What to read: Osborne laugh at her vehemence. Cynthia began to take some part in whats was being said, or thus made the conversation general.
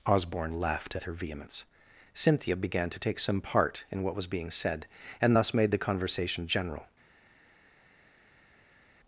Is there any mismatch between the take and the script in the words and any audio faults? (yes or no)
yes